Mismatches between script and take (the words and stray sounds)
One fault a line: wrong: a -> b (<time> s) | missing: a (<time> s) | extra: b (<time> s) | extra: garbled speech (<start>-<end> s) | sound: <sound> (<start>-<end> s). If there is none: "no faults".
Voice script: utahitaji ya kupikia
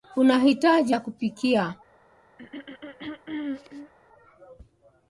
sound: throat clearing (2.4-3.9 s)